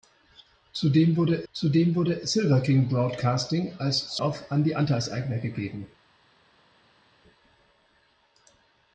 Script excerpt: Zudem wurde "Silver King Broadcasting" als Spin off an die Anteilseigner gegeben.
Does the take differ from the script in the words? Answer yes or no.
yes